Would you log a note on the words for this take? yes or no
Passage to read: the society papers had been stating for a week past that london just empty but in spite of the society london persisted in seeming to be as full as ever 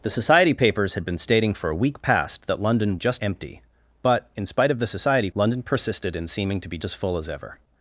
no